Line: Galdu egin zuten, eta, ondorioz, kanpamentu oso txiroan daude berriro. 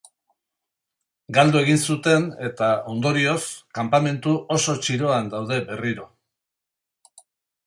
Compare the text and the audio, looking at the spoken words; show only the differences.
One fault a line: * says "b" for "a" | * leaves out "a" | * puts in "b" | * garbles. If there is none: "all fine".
all fine